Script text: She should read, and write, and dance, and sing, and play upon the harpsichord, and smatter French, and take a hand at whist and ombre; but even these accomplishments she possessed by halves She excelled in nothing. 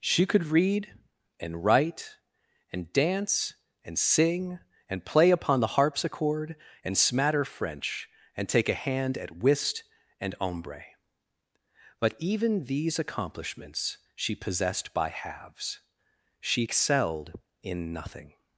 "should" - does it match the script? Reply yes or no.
no